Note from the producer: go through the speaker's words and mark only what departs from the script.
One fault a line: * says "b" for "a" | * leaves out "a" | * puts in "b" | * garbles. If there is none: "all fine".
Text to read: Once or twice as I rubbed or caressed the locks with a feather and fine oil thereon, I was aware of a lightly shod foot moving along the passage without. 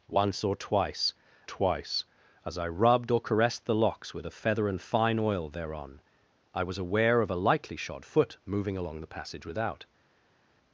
* puts in "twice"